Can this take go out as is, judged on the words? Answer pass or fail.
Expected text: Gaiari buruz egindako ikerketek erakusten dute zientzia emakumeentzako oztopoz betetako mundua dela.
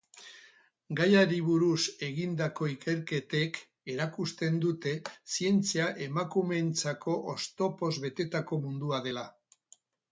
pass